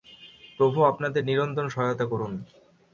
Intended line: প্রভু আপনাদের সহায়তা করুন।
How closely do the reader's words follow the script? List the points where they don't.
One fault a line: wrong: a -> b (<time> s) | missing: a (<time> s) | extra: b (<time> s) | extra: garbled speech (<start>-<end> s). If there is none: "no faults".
extra: নিরন্তর (1.2 s)